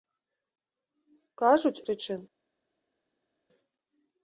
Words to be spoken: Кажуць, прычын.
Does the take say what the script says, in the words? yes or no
yes